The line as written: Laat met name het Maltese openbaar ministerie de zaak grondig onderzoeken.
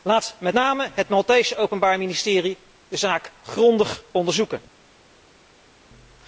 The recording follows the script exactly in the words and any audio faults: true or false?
true